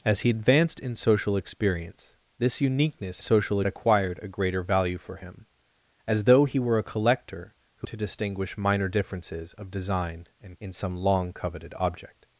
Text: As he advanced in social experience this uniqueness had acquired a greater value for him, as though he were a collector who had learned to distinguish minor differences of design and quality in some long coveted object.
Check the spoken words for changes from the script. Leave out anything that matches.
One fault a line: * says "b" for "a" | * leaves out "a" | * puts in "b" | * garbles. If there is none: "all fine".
* says "social" for "had"
* leaves out "had learned"
* leaves out "quality"